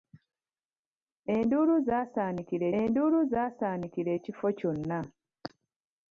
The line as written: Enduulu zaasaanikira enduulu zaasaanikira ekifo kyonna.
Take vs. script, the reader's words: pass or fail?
pass